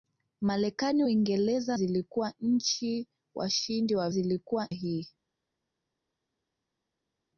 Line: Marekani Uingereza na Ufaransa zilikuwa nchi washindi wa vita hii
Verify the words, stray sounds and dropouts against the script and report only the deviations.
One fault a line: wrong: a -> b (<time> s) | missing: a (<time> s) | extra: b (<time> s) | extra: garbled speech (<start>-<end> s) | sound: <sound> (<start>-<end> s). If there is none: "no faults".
missing: na Ufaransa (1.8 s)
wrong: vita -> zilikuwa (4.1 s)